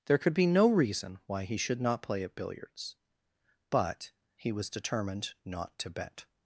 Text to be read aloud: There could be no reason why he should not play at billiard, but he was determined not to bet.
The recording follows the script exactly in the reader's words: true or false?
false